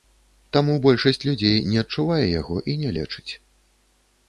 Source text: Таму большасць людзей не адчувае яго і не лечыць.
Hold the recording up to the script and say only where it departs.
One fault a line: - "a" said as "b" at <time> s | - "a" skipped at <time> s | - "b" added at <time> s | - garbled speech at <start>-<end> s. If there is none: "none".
none